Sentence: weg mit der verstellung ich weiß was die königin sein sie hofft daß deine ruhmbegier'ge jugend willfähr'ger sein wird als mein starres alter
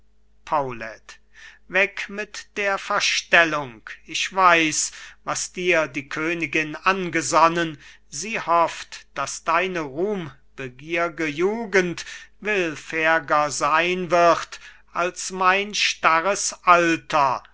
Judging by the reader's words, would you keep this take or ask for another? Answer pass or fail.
fail